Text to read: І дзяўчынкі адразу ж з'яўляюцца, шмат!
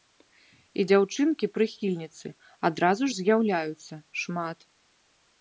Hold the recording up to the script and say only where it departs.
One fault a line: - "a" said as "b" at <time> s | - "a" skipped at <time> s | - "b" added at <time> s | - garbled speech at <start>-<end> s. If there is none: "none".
- "прыхільніцы" added at 1.6 s